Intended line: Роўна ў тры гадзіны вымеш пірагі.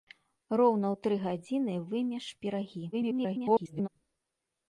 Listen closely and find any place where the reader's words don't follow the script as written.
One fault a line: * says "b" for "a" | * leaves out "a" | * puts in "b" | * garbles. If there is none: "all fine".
* garbles